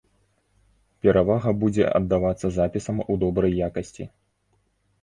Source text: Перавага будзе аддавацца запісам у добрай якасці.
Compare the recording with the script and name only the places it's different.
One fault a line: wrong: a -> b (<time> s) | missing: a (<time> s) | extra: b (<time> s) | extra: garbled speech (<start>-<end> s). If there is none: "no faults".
no faults